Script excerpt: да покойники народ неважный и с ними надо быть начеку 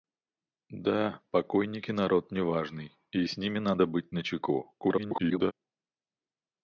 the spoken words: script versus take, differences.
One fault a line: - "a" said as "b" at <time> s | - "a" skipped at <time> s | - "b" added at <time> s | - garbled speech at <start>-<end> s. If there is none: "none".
- garbled speech at 4.8-5.5 s